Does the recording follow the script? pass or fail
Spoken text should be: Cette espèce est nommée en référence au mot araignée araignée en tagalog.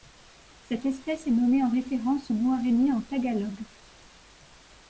fail